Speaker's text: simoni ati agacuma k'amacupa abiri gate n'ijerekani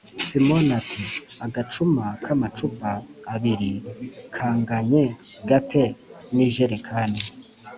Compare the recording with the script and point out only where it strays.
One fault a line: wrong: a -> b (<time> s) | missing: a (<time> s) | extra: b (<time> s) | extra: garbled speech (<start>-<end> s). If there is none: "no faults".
extra: kanganye (4.4 s)